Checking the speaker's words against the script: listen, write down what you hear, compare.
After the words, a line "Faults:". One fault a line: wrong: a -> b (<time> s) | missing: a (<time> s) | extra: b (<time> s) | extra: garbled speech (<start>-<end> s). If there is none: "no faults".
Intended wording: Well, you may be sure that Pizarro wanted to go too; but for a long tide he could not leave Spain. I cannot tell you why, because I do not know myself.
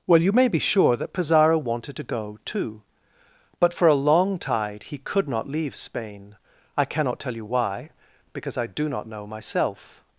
Well, you may be sure that Pizarro wanted to go too; but for a long tide he could not leave Spain. I cannot tell you why, because I do not know myself.
Faults:
no faults